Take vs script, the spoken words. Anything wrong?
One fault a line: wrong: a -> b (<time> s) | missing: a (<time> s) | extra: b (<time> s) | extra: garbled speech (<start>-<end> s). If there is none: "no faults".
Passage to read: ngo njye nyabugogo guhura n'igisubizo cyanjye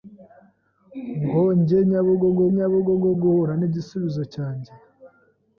extra: nyabugogo (2.5 s)